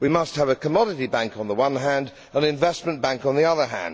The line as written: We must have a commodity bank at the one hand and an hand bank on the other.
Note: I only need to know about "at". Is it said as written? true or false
false